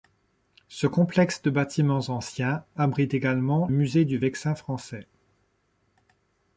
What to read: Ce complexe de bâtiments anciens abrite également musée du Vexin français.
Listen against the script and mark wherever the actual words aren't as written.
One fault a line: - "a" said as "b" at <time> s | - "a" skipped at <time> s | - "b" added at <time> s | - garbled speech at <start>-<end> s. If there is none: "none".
none